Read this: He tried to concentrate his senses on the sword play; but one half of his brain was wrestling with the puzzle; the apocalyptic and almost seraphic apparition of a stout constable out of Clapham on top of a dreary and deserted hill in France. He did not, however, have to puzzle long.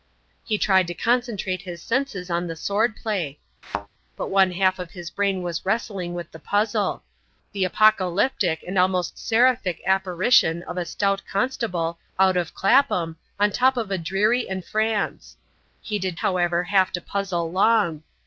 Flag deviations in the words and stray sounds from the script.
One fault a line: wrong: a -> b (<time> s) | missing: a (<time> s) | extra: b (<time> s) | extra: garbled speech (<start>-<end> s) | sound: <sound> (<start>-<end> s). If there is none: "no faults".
sound: thud (3.6-3.9 s)
missing: deserted hill in (14.6 s)
missing: not (16.2 s)